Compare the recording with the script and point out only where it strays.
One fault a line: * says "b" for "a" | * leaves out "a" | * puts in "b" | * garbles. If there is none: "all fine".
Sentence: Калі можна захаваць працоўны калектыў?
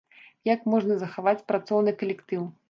* says "Як" for "Калі"